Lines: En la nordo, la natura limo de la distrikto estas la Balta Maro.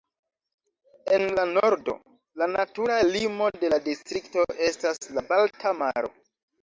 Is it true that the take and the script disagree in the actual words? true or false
false